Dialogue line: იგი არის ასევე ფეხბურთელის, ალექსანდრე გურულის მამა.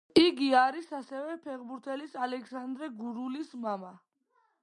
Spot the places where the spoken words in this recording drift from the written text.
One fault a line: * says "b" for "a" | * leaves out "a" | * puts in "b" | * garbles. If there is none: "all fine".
all fine